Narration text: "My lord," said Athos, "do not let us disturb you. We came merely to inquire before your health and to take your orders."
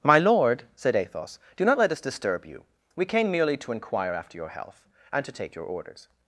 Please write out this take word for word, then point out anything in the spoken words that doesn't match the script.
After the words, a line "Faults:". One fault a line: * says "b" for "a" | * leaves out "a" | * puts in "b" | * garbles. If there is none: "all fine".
"My lord," said Athos, "do not let us disturb you. We came merely to inquire after your health and to take your orders."
Faults:
* says "after" for "before"